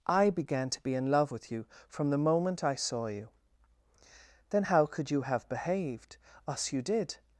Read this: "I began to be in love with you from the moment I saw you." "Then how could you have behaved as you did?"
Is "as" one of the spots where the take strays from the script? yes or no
yes